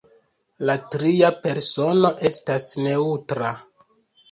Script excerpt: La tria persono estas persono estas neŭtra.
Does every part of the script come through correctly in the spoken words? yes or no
no